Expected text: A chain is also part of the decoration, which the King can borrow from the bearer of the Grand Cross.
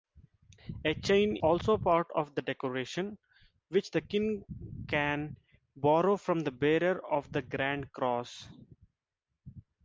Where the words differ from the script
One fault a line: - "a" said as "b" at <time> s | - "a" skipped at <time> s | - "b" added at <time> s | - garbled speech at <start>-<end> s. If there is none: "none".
- "is" skipped at 1.4 s